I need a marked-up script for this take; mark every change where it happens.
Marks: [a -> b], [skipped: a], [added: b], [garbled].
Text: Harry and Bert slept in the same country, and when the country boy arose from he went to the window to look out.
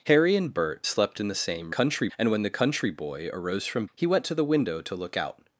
Harry and Bert slept in the same country, and when the country boy arose from he went to the window to look out.